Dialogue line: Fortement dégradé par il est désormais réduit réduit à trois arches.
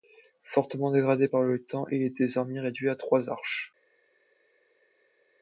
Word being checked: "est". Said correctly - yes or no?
yes